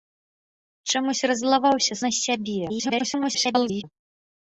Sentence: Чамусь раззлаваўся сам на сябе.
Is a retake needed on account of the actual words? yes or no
yes